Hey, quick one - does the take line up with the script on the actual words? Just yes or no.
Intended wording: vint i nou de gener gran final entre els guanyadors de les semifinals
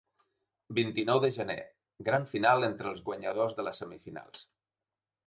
yes